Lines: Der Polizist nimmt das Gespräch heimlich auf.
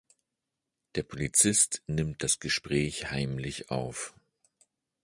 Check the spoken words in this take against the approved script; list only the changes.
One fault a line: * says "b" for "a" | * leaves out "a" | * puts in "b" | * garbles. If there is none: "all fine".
all fine